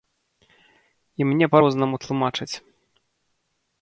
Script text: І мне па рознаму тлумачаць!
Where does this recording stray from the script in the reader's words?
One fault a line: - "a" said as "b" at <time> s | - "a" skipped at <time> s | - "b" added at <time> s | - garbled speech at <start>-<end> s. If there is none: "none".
none